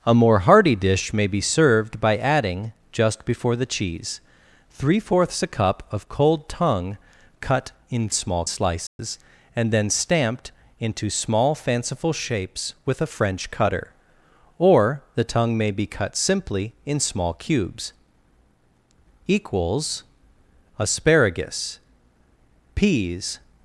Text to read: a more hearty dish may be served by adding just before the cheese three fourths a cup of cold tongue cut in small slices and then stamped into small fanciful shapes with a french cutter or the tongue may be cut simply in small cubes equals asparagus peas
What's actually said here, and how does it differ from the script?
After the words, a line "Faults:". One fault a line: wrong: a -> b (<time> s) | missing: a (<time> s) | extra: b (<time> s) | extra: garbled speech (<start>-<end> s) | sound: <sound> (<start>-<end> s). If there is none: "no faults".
a more hearty dish may be served by adding just before the cheese three fourths a cup of cold tongue cut in small slices and then stamped into small fanciful shapes with a french cutter or the tongue may be cut simply in small cubes equals asparagus peas
Faults:
sound: dropout (8.9-9.0 s)